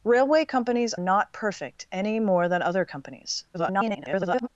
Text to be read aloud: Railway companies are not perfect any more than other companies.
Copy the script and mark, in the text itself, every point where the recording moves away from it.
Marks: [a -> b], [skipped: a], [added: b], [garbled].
Railway companies [skipped: are] not perfect any more than other companies. [garbled]